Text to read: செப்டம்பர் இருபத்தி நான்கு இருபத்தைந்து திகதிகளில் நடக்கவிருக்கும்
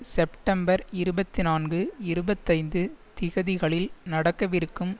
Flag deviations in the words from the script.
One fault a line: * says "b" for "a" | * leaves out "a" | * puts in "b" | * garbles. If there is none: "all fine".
all fine